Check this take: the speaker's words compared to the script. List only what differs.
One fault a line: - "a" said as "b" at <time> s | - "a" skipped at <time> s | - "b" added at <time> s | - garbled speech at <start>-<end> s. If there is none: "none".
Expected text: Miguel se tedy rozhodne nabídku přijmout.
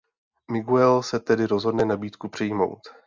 none